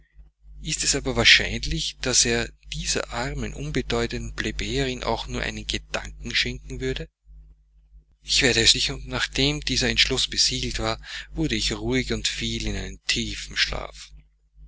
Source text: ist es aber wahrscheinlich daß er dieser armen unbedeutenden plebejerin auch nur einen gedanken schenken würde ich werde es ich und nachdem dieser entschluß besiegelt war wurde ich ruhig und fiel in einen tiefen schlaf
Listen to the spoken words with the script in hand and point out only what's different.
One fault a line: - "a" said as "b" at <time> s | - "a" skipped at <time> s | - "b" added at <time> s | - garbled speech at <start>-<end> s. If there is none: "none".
none